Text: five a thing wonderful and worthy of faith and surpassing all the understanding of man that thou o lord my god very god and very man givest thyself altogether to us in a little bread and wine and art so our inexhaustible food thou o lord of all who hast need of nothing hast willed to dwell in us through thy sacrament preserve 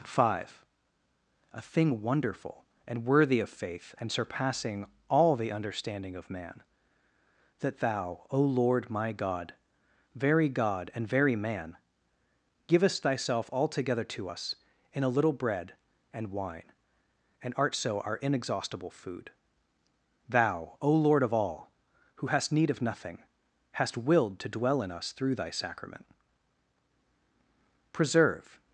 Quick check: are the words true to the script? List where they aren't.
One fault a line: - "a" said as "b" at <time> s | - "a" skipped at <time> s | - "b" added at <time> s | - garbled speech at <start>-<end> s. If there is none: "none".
none